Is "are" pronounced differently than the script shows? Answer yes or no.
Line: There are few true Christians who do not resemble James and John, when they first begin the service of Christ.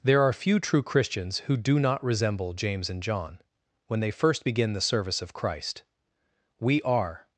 no